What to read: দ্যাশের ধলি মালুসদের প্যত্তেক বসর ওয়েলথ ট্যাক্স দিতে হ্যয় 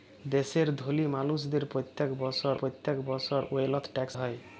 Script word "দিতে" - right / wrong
wrong